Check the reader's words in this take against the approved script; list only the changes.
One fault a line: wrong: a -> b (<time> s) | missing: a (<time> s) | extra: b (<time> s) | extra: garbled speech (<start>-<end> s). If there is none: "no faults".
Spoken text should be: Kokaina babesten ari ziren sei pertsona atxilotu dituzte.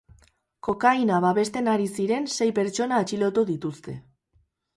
no faults